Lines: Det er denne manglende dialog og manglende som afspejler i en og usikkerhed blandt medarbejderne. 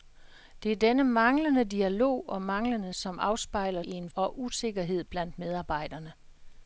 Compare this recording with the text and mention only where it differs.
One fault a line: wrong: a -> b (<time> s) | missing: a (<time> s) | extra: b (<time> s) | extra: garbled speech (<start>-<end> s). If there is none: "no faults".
no faults